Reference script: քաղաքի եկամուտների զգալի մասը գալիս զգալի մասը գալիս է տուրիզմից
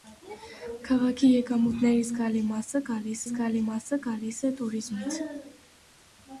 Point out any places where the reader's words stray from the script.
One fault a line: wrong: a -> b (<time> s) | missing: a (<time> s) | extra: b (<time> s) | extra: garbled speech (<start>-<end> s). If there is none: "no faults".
no faults